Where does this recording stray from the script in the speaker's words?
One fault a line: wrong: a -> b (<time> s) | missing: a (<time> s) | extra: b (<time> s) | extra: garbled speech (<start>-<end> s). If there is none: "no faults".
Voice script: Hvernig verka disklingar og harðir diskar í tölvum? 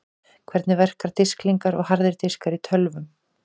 no faults